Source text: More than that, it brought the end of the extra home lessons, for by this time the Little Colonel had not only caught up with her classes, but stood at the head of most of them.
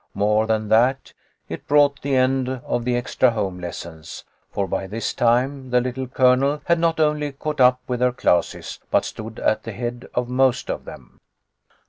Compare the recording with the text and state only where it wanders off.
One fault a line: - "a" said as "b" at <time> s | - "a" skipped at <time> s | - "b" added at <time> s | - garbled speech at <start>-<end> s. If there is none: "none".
none